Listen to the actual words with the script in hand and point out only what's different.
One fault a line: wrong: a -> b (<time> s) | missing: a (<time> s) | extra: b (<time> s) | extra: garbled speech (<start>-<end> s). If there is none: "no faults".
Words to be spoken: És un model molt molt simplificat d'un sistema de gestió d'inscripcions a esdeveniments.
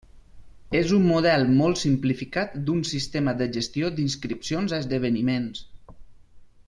missing: molt (1.8 s)